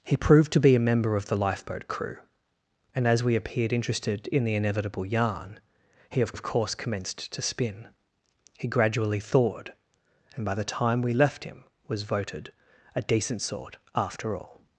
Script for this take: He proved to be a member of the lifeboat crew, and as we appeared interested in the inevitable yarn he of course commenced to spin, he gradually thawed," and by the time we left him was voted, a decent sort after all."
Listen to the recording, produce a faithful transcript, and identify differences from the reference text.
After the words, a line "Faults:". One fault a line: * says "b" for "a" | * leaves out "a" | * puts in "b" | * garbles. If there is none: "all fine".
He proved to be a member of the lifeboat crew, and as we appeared interested in the inevitable yarn he of of course commenced to spin, he gradually thawed," and by the time we left him was voted, a decent sort after all."
Faults:
* puts in "of"